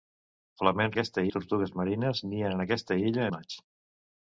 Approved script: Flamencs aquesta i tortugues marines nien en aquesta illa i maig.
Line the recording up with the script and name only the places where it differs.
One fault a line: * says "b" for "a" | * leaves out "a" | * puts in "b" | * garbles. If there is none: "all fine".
all fine